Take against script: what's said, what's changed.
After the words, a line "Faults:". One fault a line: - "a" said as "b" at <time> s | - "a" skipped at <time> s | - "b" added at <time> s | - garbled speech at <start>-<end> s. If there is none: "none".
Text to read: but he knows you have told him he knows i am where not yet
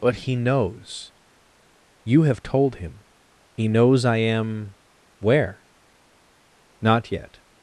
but he knows you have told him he knows i am where not yet
Faults:
none